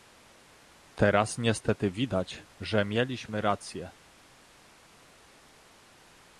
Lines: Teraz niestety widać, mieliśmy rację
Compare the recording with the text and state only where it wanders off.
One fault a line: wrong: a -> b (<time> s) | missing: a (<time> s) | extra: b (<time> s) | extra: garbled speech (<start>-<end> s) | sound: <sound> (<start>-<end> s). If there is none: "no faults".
extra: że (2.6 s)